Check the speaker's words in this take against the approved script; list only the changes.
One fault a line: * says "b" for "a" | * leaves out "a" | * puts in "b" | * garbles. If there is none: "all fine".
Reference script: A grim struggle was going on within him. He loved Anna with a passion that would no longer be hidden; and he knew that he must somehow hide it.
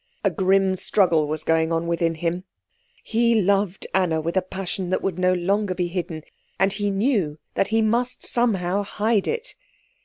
all fine